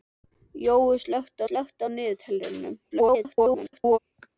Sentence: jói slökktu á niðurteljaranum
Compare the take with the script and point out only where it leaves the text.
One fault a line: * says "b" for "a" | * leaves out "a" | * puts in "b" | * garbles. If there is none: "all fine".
* puts in "slökktu"
* garbles